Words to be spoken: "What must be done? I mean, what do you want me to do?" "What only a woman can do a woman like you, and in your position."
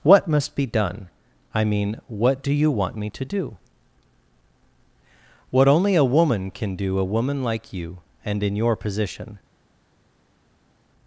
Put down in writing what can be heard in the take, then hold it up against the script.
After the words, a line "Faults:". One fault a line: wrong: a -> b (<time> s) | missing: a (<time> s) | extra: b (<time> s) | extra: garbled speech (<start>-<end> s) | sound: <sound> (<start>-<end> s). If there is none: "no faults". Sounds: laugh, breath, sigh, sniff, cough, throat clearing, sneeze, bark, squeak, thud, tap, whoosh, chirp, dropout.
"What must be done? I mean, what do you want me to do?" "What only a woman can do a woman like you, and in your position."
Faults:
no faults